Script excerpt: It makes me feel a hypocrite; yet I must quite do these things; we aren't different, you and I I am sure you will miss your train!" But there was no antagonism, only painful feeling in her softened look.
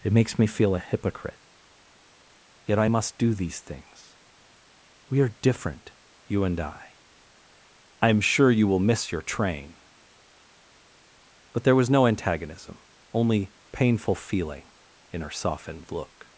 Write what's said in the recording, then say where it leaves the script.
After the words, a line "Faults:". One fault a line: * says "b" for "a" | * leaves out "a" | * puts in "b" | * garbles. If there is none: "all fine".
It makes me feel a hypocrite; yet I must do these things; we are different, you and I I am sure you will miss your train!" But there was no antagonism, only painful feeling in her softened look.
Faults:
* leaves out "quite"
* says "are" for "aren't"